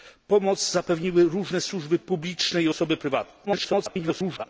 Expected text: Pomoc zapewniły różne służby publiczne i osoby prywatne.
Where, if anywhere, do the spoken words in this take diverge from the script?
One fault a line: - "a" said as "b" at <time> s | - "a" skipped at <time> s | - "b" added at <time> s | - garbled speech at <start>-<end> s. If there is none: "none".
- garbled speech at 3.5-4.4 s